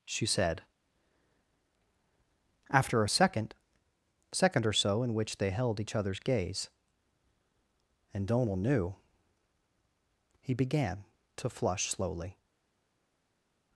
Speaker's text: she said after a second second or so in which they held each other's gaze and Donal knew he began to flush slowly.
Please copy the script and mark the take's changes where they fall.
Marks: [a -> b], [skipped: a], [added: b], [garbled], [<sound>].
she said after a second second or so in which they held each other's gaze and Donal knew he began to flush slowly.